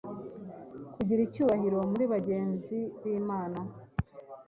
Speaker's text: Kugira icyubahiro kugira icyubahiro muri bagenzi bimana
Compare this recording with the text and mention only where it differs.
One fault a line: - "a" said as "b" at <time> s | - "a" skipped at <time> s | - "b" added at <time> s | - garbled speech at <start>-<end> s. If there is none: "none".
- "kugira icyubahiro" skipped at 1.8 s